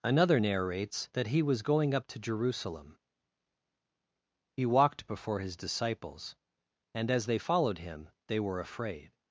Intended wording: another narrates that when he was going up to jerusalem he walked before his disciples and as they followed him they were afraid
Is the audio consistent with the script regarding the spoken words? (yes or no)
no